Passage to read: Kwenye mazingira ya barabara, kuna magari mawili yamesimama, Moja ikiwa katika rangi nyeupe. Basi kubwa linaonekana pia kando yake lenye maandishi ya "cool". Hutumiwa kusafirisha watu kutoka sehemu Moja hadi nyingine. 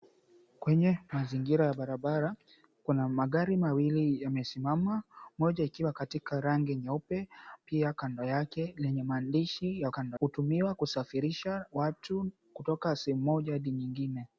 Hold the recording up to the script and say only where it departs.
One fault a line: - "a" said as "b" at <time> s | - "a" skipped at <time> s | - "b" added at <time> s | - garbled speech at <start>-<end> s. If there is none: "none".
- "Basi kubwa linaonekana" skipped at 7.3 s
- "cool" said as "kando" at 9.9 s